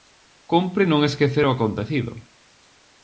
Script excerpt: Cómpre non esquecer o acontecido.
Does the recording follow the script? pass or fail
pass